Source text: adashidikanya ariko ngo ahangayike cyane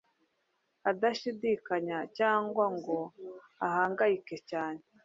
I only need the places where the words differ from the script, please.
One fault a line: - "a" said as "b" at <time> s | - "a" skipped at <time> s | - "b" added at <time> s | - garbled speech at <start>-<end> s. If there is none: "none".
- "ariko" said as "cyangwa" at 2.2 s